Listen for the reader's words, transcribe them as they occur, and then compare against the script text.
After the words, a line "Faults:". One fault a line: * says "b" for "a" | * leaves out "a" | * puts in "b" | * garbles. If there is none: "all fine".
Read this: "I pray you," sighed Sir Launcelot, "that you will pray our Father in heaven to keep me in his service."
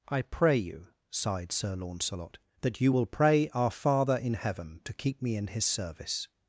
"I pray you," sighed Sir Launcelot, "that you will pray our Father in heaven to keep me in his service."
Faults:
all fine